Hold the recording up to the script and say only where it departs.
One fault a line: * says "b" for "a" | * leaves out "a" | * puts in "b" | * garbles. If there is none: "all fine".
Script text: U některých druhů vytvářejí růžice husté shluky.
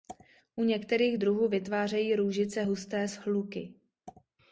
all fine